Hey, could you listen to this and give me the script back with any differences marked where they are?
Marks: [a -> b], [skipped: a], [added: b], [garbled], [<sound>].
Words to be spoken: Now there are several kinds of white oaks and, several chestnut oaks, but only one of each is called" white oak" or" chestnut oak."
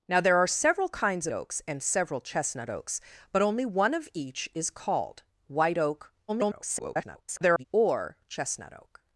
Now there are several kinds [skipped: of white] oaks and, several chestnut oaks, but only one of each is called" white oak" [garbled] or" chestnut oak."